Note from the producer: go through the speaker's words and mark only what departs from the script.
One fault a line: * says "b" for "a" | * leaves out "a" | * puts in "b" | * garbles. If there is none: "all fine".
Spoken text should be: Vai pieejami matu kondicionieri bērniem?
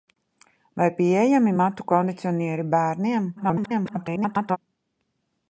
* garbles